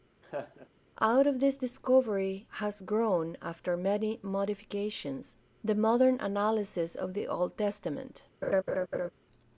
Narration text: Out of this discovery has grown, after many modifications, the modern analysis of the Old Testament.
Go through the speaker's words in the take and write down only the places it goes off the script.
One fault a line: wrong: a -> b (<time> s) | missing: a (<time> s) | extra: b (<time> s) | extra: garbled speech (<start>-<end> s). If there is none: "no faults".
no faults